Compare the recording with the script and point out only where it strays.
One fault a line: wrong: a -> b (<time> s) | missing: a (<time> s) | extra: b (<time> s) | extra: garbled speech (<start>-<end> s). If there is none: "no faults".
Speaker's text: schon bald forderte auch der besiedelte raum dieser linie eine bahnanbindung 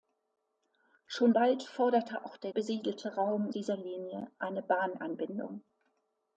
no faults